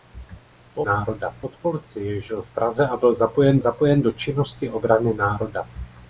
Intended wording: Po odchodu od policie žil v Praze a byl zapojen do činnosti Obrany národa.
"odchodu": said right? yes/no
no